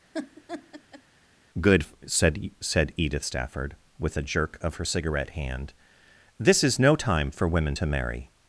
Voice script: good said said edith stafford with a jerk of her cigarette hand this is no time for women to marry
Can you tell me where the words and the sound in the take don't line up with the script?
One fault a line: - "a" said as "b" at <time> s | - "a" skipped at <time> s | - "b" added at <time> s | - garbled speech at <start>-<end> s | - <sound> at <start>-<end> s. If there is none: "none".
- laugh at 0.1-1.0 s